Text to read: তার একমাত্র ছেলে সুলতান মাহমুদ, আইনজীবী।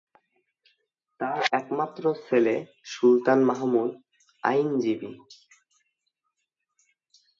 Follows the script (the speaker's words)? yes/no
yes